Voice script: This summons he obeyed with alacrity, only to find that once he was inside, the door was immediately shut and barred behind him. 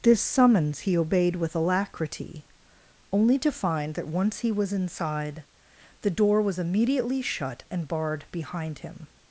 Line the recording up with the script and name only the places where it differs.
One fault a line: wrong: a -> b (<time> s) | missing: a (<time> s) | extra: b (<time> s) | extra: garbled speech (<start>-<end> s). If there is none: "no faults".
no faults